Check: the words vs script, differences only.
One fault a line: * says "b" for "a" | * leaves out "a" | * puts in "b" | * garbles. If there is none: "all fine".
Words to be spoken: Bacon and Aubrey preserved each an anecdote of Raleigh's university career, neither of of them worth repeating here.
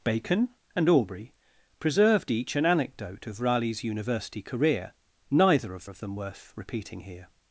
all fine